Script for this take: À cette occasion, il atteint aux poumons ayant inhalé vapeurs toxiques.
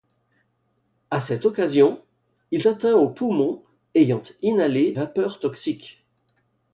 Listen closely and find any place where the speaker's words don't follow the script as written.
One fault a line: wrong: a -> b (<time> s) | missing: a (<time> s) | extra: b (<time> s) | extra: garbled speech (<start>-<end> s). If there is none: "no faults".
no faults